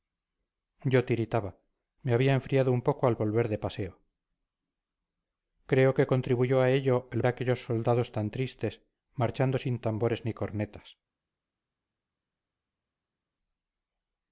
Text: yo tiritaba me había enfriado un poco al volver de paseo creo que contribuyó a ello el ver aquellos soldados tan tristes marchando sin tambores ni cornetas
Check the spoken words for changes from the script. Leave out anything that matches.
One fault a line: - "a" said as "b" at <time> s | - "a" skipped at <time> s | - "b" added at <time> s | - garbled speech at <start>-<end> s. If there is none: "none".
- "ver" skipped at 7.2 s